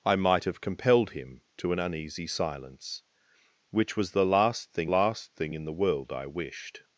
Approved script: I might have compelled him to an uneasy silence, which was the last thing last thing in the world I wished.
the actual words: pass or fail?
pass